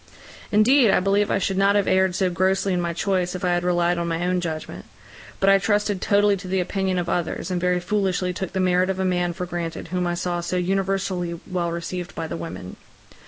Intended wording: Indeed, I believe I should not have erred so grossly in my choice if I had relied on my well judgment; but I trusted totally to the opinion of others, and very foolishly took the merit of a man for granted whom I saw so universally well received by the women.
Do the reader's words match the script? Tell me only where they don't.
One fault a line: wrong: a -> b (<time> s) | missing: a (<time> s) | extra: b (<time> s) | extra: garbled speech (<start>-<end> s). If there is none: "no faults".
wrong: well -> own (4.2 s)